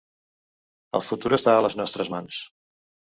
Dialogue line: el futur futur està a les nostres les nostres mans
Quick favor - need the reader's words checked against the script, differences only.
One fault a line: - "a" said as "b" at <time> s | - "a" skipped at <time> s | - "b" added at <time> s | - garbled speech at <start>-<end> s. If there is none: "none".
- "futur" skipped at 1.3 s
- "les nostres" skipped at 2.1 s